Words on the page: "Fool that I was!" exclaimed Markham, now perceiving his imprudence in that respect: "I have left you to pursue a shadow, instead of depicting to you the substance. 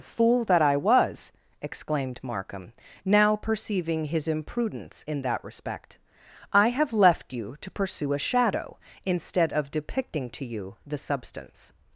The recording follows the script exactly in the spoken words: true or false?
true